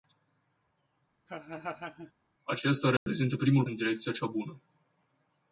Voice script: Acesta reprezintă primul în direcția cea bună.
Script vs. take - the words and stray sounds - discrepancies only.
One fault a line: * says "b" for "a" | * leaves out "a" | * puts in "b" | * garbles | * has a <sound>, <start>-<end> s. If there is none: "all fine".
* has a laugh, 1.3-2.1 s
* has a dropout, 3.0-3.1 s